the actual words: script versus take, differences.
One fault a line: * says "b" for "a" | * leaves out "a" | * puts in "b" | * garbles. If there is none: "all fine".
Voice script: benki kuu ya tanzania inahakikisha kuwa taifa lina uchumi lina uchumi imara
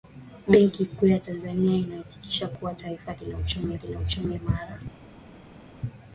all fine